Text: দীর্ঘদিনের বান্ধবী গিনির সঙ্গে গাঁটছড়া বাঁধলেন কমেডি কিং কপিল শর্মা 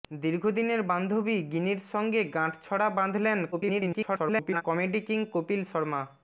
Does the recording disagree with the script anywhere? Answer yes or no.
yes